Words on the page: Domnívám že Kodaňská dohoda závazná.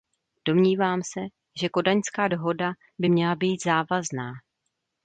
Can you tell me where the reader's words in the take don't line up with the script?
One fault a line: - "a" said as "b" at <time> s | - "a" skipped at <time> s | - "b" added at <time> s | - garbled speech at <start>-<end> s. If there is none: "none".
- "se" added at 1.0 s
- "by měla být" added at 3.0 s